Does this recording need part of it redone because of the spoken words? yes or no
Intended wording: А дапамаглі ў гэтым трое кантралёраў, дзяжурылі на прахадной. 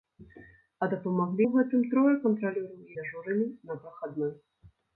no